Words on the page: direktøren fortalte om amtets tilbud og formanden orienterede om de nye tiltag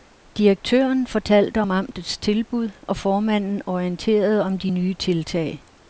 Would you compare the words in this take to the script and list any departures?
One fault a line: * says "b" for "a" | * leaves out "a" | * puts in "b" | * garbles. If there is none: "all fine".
all fine